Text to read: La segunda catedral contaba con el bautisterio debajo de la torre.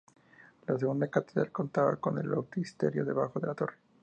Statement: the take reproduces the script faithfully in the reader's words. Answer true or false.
true